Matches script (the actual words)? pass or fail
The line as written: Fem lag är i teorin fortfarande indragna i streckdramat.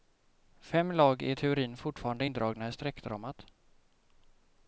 pass